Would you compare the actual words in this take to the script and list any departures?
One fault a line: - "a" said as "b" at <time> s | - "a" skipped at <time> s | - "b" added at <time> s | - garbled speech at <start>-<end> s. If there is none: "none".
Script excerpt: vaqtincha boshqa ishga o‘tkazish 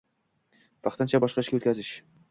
none